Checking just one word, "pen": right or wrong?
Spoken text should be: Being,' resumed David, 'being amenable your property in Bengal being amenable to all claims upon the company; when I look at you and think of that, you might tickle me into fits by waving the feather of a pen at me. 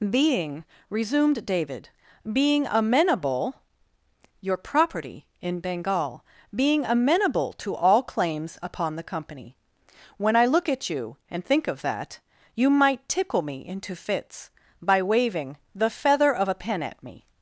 right